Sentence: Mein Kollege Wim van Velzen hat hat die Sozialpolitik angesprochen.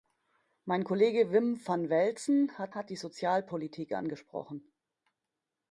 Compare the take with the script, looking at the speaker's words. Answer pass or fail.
pass